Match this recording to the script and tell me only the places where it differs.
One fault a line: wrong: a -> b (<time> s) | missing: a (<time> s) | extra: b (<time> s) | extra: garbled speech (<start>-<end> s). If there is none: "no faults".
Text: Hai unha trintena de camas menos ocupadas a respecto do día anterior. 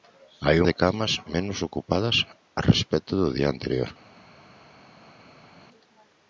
missing: unha trintena (0.6 s)